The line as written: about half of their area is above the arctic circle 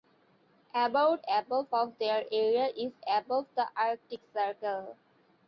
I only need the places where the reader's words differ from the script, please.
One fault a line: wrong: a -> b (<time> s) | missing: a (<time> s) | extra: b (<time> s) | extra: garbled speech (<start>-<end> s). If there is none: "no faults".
wrong: half -> above (1.3 s)